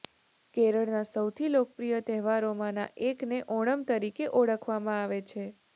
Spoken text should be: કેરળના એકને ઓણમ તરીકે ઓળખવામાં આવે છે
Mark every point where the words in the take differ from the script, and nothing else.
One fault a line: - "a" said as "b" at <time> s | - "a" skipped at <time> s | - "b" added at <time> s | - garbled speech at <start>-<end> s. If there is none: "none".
- "સૌથી લોકપ્રિય તહેવારોમાંના" added at 1.1 s